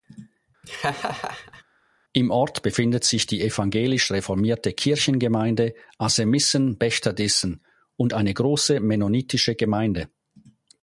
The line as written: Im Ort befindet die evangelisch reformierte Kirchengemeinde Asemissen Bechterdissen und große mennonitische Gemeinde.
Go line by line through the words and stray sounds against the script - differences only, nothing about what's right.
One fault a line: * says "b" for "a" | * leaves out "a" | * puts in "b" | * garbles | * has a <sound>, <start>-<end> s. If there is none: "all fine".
* has a laugh, 0.6-1.6 s
* puts in "sich"
* puts in "eine"